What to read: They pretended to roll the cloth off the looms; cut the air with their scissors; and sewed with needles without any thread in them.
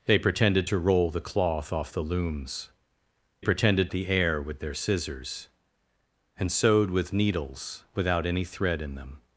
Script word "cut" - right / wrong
wrong